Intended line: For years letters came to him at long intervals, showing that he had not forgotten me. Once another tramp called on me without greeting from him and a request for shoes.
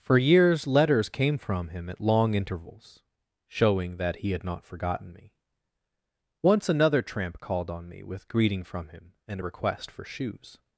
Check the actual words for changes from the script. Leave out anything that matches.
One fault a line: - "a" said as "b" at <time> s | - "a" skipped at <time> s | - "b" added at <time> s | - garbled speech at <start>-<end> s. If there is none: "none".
- "to" said as "from" at 1.4 s
- "without" said as "with" at 8.0 s